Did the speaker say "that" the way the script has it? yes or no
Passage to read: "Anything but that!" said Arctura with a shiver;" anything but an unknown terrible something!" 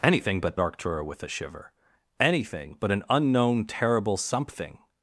no